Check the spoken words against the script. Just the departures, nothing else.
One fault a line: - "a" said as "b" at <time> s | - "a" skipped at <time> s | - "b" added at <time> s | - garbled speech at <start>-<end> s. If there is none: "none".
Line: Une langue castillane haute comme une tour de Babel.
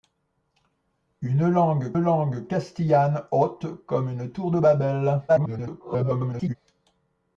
- "langue" added at 2.0 s
- garbled speech at 5.3-6.6 s